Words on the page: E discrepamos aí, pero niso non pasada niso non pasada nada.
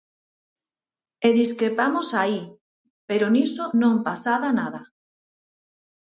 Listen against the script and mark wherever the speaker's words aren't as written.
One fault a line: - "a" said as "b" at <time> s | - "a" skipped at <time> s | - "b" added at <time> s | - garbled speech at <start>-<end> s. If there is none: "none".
- "niso non pasada" skipped at 4.5 s